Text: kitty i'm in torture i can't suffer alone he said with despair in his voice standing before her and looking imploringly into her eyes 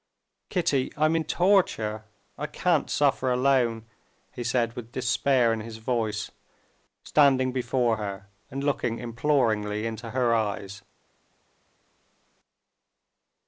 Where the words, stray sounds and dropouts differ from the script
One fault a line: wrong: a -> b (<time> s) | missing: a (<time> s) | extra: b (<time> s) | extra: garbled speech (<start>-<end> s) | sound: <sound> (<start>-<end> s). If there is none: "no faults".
no faults